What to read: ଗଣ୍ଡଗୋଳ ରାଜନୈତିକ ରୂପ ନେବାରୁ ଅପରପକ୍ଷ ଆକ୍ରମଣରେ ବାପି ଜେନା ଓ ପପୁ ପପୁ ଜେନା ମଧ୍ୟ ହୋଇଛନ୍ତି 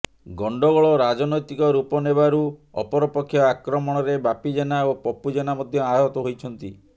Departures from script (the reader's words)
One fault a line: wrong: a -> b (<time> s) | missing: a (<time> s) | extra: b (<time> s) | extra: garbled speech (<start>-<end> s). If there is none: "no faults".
missing: ପପୁ (5.3 s)
extra: ଆହତ (5.9 s)